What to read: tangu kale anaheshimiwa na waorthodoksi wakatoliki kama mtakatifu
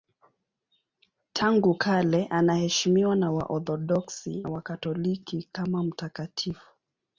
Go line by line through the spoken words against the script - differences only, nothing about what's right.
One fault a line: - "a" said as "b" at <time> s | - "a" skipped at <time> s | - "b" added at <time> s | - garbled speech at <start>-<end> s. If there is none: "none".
none